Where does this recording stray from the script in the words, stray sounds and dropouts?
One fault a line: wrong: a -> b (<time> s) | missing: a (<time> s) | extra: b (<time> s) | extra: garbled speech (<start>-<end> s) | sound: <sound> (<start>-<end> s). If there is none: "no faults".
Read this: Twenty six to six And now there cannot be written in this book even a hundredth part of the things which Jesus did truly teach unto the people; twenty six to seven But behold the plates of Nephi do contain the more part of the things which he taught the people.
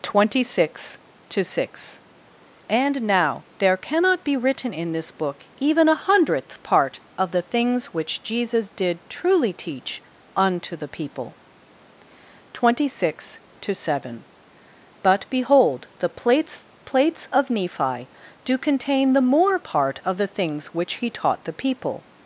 extra: plates (16.8 s)